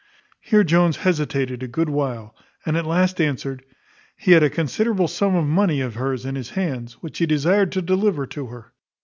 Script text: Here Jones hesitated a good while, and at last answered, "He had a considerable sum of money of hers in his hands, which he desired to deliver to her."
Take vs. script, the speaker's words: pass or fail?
pass